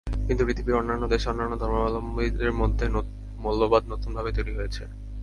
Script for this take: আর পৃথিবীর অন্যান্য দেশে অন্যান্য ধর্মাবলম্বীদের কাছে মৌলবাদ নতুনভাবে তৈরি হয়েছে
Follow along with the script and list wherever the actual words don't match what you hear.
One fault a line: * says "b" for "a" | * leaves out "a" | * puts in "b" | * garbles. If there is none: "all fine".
* says "কিন্তু" for "আর"
* says "মধ্যে" for "কাছে"